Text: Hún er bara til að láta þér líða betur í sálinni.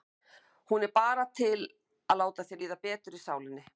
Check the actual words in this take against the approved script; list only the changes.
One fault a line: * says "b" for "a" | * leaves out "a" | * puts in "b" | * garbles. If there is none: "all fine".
all fine